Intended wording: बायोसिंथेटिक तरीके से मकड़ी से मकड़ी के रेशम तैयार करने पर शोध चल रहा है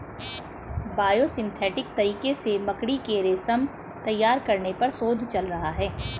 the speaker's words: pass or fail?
fail